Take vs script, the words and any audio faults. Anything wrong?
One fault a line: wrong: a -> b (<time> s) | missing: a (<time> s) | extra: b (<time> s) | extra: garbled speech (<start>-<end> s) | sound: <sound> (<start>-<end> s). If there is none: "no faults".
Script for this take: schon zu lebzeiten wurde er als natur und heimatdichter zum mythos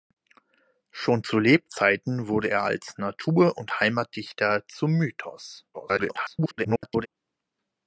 extra: garbled speech (5.7-7.1 s)